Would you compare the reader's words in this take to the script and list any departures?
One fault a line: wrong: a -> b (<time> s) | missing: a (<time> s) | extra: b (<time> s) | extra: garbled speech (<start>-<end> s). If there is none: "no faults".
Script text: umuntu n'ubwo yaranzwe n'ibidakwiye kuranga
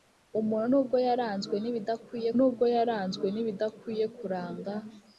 extra: n'ubwo yaranzwe n'ibidakwiye (2.4 s)